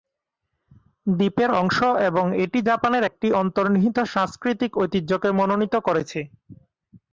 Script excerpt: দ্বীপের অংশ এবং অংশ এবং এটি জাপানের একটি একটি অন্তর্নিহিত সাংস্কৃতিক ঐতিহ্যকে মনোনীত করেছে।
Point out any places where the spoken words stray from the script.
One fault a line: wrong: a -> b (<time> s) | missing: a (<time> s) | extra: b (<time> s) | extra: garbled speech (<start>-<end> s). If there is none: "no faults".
missing: অংশ এবং (2.2 s)
missing: একটি (3.3 s)